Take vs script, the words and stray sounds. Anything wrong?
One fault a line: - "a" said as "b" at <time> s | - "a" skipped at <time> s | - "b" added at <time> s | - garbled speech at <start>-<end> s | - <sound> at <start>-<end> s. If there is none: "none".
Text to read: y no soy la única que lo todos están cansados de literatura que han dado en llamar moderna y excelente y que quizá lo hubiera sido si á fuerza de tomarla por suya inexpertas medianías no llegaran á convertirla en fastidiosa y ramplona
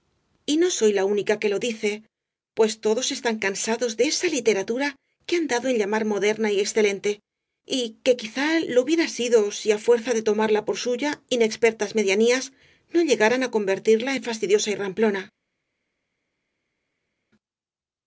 - "dice pues" added at 1.6 s
- "esa" added at 4.1 s